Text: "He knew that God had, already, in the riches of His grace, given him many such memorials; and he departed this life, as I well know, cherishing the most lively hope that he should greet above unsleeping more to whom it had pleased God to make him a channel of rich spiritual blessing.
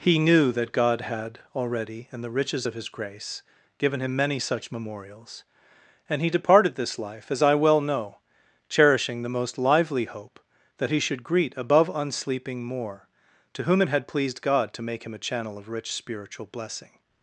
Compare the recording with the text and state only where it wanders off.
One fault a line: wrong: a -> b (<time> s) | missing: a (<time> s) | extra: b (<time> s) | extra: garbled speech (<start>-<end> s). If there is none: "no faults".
no faults